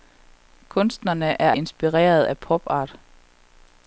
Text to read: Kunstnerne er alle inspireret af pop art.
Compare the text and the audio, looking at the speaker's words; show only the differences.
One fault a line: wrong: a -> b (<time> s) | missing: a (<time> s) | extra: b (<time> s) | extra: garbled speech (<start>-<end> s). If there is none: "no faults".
missing: alle (1.5 s)